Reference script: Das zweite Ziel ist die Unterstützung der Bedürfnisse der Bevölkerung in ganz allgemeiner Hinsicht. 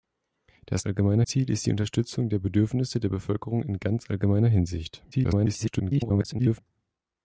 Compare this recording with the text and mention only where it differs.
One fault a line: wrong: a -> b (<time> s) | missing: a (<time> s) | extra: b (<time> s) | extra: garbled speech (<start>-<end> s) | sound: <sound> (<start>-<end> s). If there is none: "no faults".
wrong: zweite -> allgemeiner (0.8 s)
extra: garbled speech (5.1-6.6 s)